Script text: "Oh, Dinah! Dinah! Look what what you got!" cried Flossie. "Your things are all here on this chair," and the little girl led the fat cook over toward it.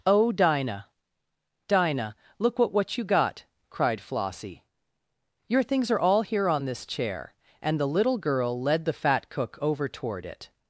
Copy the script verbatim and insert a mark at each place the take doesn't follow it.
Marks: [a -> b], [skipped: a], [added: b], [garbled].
"Oh, Dinah! Dinah! Look what what you got!" cried Flossie. "Your things are all here on this chair," and the little girl led the fat cook over toward it.